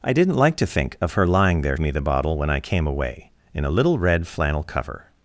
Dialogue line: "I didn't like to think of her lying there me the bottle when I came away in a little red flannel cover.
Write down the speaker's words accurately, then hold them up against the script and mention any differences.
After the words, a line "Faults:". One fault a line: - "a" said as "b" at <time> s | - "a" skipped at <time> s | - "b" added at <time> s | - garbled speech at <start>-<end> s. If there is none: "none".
"I didn't like to think of her lying there me the bottle when I came away in a little red flannel cover.
Faults:
none